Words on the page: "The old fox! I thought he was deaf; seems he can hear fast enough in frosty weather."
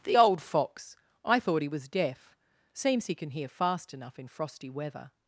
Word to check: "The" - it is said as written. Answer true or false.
true